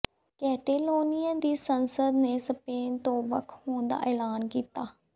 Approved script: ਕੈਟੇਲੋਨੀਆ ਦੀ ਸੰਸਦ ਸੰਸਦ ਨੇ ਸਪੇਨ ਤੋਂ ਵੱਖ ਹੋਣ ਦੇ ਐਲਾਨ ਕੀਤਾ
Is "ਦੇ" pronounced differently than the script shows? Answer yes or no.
yes